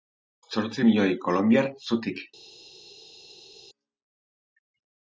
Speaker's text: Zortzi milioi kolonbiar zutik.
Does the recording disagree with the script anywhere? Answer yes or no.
no